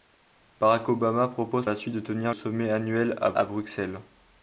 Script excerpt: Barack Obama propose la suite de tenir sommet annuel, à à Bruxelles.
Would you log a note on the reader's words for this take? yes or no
no